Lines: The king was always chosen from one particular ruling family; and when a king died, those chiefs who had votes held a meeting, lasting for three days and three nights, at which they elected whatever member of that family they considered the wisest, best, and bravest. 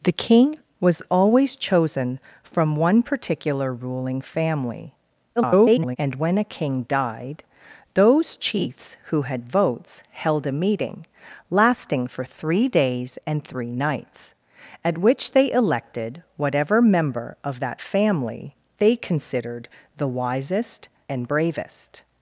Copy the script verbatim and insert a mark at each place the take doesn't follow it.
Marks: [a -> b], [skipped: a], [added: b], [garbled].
The king was always chosen from one particular ruling family; [garbled] and when a king died, those chiefs who had votes held a meeting, lasting for three days and three nights, at which they elected whatever member of that family they considered the wisest, [skipped: best,] and bravest.